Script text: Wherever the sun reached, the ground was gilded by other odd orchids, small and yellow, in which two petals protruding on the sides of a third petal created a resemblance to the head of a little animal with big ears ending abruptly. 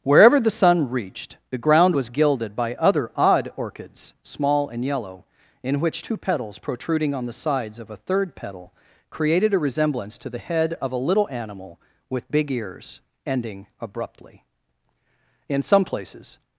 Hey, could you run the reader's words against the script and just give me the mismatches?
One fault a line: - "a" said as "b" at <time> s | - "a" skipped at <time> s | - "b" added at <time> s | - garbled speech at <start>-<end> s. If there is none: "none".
- "In some places" added at 15.5 s